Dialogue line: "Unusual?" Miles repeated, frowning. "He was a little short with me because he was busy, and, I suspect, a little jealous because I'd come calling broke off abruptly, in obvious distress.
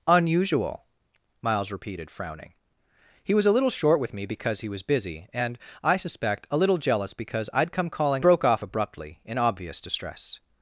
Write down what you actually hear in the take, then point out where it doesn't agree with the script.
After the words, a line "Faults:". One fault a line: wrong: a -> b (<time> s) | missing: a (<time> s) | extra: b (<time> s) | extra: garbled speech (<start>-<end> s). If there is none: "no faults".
"Unusual?" Miles repeated, frowning. "He was a little short with me because he was busy, and, I suspect, a little jealous because I'd come calling broke off abruptly, in obvious distress.
Faults:
no faults